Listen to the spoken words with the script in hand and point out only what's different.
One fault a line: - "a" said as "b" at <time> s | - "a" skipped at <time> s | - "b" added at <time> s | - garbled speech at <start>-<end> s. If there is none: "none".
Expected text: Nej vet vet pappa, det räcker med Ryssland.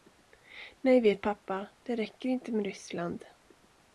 - "vet" skipped at 1.2 s
- "inte" added at 2.3 s